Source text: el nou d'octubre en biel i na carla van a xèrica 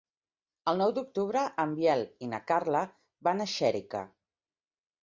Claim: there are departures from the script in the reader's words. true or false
false